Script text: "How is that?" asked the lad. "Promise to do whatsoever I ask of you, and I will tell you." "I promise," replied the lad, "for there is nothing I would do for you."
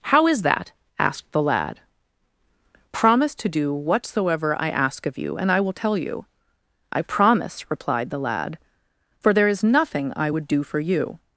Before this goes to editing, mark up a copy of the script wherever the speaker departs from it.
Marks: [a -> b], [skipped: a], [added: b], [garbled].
"How is that?" asked the lad. "Promise to do whatsoever I ask of you, and I will tell you." "I promise," replied the lad, "for there is nothing I would do for you."